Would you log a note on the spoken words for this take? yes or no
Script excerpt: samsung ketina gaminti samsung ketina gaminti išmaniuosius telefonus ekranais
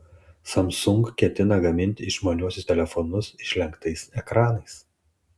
yes